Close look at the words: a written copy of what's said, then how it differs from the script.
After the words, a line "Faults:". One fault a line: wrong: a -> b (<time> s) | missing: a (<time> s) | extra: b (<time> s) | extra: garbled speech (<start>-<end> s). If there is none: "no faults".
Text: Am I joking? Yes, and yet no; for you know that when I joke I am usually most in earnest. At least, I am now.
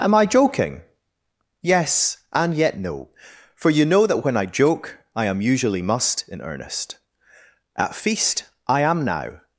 Am I joking? Yes, and yet no; for you know that when I joke I am usually must in earnest. At feast, I am now.
Faults:
wrong: most -> must (5.8 s)
wrong: least -> feast (7.9 s)